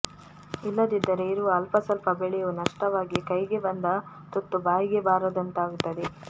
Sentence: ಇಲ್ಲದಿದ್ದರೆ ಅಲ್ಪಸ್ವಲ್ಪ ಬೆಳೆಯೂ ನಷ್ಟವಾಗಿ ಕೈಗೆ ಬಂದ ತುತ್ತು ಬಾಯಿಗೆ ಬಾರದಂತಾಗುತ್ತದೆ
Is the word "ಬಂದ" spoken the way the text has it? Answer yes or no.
yes